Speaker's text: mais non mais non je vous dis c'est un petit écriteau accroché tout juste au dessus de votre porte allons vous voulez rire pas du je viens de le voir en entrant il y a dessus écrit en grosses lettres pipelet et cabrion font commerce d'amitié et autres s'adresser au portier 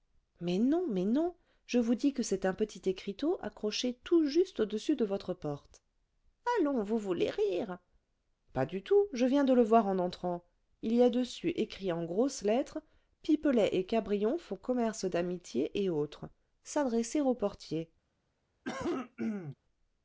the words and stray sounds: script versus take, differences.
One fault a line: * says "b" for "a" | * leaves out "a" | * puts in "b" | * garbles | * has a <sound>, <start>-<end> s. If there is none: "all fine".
* puts in "que"
* puts in "tout"
* has a cough, 18.6-19.5 s